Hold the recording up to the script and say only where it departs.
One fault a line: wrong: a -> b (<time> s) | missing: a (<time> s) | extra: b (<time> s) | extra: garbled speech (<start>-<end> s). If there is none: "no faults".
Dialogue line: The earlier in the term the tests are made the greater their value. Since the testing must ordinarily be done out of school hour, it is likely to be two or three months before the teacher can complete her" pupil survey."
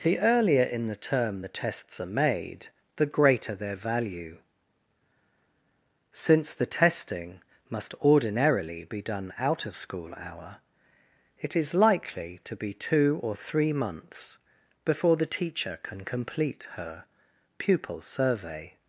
no faults